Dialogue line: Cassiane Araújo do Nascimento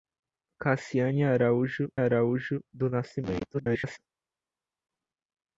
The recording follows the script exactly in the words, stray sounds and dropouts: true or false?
false